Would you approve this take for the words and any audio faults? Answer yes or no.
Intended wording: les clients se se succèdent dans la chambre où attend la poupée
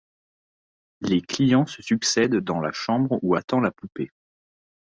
no